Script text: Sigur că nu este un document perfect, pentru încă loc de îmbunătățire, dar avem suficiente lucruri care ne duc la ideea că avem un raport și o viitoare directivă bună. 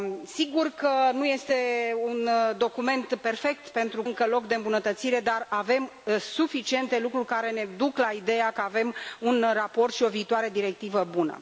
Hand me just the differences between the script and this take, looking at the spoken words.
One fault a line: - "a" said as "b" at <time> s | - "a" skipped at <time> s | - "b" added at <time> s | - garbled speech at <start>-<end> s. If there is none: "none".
none